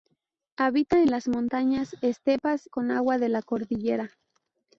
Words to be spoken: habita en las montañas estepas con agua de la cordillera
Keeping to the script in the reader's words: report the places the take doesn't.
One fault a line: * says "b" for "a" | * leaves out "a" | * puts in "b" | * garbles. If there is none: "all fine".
all fine